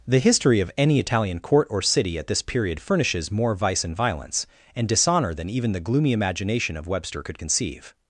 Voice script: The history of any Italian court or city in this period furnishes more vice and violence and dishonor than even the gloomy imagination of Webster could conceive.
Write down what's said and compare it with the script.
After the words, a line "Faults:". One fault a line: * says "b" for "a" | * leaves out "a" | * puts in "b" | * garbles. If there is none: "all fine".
The history of any Italian court or city at this period furnishes more vice and violence and dishonor than even the gloomy imagination of Webster could conceive.
Faults:
* says "at" for "in"